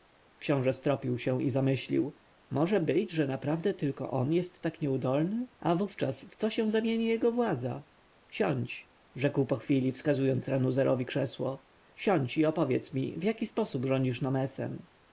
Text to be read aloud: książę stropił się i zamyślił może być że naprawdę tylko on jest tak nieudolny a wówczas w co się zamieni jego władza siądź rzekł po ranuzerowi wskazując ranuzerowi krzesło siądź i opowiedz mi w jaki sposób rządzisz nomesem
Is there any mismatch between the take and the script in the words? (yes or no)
yes